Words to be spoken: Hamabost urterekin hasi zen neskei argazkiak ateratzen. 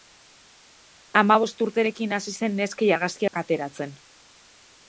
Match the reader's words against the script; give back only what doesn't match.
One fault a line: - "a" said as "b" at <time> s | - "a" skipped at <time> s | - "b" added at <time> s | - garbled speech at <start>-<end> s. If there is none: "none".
none